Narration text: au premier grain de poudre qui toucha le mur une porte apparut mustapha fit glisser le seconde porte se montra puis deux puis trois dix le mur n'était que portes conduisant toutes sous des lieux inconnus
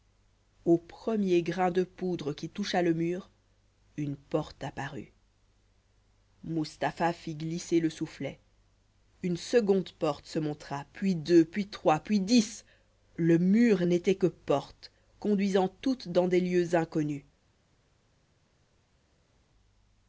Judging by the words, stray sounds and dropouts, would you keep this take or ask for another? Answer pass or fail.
fail